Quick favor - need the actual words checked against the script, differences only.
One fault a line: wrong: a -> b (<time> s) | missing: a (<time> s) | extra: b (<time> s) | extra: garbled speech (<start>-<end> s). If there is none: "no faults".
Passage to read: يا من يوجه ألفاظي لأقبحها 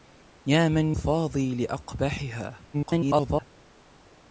missing: يوجه (0.9 s)
extra: garbled speech (2.7-3.5 s)